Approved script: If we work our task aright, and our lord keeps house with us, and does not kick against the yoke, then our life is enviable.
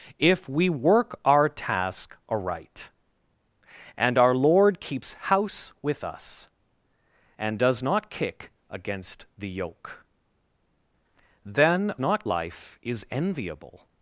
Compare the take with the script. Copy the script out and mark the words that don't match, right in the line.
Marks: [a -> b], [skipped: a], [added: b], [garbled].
If we work our task aright, and our lord keeps house with us, and does not kick against the yoke, then [our -> not] life is enviable.